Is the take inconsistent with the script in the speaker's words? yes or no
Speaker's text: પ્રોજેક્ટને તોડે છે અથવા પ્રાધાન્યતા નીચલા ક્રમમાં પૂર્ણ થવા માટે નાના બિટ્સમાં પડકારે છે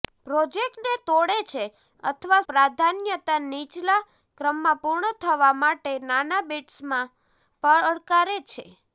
no